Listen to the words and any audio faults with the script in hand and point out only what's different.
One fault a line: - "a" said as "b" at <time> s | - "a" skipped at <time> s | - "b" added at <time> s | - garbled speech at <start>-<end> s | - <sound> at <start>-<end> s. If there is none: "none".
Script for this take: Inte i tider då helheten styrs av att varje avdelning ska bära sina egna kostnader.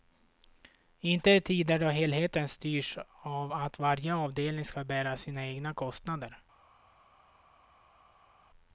none